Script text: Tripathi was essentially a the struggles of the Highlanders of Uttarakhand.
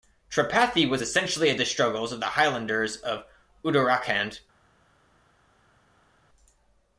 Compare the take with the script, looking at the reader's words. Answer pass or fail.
pass